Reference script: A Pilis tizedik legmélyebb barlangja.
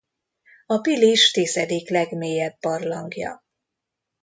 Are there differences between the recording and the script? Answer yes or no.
no